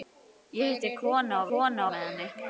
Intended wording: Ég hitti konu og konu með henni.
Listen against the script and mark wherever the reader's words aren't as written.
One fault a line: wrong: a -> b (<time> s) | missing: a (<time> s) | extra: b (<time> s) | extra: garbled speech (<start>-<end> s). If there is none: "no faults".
no faults